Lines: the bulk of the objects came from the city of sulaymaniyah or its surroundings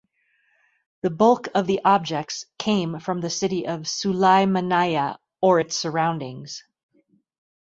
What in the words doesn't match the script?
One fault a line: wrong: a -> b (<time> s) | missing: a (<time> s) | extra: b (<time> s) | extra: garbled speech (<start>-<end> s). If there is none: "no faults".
no faults